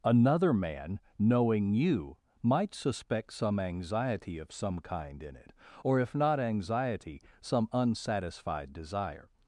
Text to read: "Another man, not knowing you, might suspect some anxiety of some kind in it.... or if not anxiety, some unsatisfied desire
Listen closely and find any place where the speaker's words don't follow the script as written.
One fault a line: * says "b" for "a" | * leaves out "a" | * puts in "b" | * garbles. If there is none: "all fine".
* leaves out "not"